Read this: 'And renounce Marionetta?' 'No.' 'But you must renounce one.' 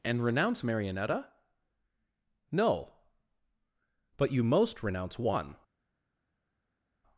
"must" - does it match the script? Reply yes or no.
no